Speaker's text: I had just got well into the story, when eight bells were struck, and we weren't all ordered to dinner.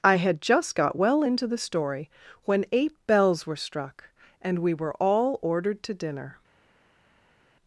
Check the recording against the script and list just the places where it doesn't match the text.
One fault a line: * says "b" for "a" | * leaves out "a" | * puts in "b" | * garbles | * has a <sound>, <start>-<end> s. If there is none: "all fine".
* says "were" for "weren't"